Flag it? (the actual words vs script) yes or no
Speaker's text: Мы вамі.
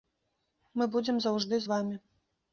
yes